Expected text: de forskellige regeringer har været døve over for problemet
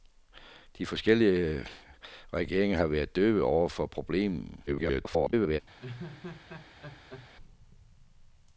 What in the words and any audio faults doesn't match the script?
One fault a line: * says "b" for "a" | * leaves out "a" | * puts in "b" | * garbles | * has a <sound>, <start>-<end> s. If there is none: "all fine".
* garbles
* has a laugh, 5.8-7.3 s